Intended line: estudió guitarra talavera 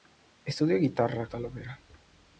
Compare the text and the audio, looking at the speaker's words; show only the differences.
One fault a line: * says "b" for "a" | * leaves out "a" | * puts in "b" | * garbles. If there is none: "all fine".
all fine